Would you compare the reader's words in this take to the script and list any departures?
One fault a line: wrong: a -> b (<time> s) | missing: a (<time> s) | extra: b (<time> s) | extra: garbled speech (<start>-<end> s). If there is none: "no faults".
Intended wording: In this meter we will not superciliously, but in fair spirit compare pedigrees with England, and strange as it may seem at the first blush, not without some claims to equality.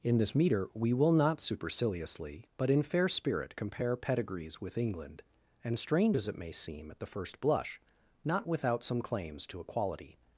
no faults